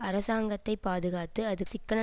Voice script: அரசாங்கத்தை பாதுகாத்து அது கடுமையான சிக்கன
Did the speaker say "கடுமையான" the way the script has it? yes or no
no